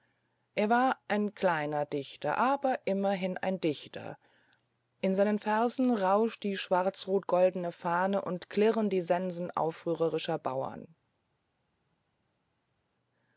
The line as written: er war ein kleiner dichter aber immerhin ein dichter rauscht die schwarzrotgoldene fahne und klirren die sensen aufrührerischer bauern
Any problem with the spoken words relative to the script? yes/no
yes